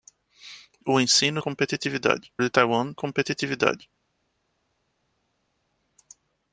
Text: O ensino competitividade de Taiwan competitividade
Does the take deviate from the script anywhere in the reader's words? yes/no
no